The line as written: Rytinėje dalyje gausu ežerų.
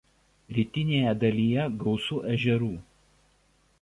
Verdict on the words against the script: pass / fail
pass